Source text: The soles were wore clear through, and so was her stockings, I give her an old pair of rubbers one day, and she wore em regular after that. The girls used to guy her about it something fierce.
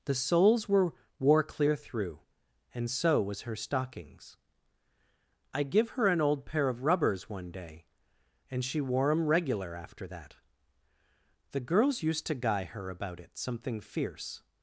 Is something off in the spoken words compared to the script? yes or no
no